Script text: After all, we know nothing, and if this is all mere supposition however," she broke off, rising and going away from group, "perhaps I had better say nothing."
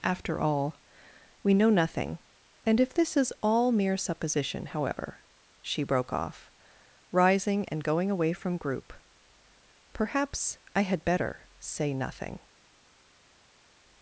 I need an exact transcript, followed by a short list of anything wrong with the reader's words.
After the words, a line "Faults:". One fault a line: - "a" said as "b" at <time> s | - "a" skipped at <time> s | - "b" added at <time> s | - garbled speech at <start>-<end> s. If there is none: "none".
After all, we know nothing, and if this is all mere supposition however," she broke off, rising and going away from group, "perhaps I had better say nothing."
Faults:
none